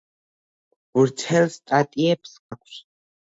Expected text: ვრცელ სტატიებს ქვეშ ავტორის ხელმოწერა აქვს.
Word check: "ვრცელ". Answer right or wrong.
right